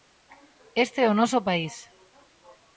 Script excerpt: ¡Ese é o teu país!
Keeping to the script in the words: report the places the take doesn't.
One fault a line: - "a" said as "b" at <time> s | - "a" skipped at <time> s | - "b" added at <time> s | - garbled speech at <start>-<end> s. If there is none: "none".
- "Ese" said as "Este" at 0.8 s
- "teu" said as "noso" at 1.2 s